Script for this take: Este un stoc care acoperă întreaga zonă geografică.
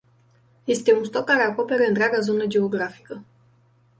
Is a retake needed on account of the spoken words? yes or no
no